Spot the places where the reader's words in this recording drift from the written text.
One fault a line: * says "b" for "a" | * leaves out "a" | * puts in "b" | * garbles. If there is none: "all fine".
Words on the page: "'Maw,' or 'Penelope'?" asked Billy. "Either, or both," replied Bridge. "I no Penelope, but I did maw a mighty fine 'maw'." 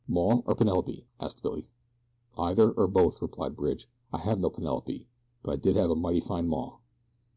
* puts in "have"
* says "have" for "maw"